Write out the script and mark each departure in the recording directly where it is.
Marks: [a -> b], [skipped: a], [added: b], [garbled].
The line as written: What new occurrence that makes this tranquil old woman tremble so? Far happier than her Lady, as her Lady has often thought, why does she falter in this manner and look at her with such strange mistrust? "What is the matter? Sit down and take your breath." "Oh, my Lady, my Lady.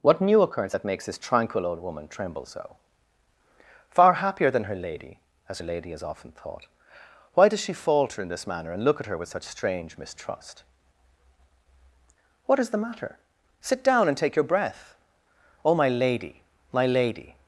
What new occurrence that makes this tranquil old woman tremble so? Far happier than her Lady, as her Lady has often thought, why does she falter in this manner and look at her with such strange mistrust? "What is the matter? Sit down and take your breath." "Oh, my Lady, my Lady.